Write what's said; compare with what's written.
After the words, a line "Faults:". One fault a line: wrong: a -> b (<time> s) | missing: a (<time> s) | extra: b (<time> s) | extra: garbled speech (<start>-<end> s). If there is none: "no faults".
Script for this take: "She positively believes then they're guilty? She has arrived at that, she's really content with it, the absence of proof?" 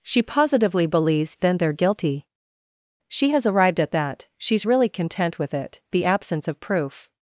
"She positively believes then they're guilty? She has arrived at that, she's really content with it, the absence of proof?"
Faults:
no faults